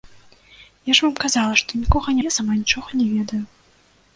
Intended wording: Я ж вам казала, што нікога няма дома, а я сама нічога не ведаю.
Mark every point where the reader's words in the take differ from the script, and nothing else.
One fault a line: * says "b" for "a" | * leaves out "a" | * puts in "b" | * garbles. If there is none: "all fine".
* leaves out "няма дома а"